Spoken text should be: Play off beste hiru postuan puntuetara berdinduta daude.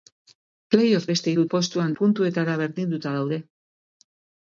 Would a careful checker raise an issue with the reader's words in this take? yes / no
no